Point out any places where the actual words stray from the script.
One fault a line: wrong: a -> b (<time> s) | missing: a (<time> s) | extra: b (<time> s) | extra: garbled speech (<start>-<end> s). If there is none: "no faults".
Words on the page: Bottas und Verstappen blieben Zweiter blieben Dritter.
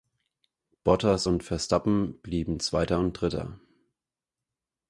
wrong: blieben -> und (3.0 s)